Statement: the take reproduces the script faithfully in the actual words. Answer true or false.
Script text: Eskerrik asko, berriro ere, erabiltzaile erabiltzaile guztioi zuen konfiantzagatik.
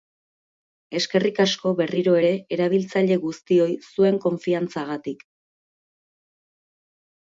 false